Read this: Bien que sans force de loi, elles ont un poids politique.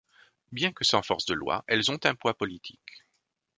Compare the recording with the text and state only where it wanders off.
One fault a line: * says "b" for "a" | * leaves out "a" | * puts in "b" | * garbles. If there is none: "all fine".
all fine